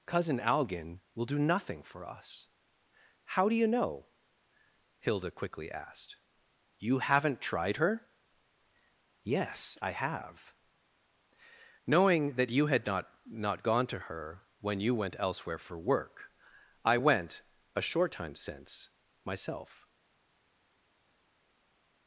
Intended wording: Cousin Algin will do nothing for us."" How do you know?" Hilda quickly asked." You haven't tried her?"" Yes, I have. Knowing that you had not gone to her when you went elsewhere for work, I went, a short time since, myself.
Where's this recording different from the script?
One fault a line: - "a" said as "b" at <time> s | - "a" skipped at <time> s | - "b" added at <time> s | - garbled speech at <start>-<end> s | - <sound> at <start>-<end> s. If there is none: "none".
- "not" added at 13.3 s